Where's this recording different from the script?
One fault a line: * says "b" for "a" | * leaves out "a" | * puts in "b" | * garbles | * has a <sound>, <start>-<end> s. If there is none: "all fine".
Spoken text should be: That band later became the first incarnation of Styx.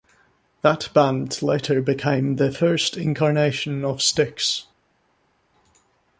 all fine